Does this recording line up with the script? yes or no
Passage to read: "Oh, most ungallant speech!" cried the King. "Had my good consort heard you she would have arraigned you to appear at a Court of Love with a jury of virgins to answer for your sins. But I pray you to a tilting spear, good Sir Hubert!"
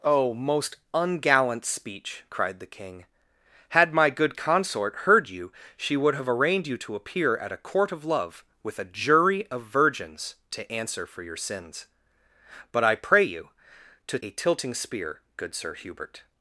yes